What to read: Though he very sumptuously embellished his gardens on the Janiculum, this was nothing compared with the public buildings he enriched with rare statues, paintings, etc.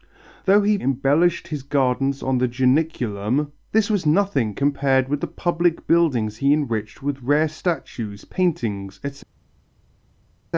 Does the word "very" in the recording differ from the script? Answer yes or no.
yes